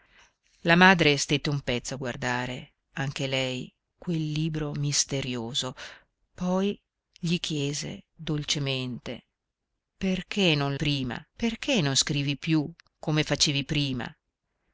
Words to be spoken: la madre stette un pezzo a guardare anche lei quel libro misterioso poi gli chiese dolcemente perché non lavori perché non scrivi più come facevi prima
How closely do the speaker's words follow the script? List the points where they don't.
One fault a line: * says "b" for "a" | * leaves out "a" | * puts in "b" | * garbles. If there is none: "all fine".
* says "prima" for "lavori"